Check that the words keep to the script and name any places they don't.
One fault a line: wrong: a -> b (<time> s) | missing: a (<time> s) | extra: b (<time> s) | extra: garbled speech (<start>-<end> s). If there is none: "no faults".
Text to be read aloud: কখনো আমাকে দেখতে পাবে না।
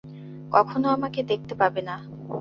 no faults